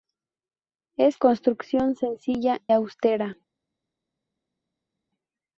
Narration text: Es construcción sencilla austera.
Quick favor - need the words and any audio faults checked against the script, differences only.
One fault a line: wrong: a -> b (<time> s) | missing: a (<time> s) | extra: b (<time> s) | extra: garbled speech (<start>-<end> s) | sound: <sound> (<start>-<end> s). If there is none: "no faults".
no faults